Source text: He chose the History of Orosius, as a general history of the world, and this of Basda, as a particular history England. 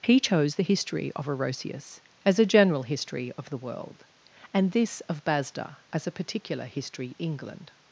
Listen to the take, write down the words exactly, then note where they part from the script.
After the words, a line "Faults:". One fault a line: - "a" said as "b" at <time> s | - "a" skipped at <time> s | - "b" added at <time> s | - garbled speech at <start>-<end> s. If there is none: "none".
He chose the History of Orosius, as a general history of the world, and this of Basda, as a particular history England.
Faults:
none